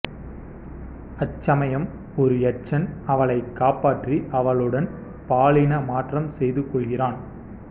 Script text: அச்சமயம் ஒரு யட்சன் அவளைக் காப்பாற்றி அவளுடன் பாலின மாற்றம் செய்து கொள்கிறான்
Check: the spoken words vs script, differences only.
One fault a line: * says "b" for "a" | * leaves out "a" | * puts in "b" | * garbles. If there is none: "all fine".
all fine